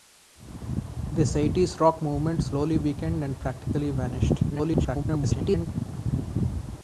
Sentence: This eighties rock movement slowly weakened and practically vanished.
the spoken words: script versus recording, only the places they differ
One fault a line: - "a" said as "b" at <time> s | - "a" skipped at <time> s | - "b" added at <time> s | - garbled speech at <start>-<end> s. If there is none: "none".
- garbled speech at 4.5-5.7 s